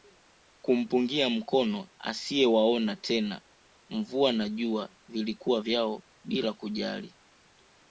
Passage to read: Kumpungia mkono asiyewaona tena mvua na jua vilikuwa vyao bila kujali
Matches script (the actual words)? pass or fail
pass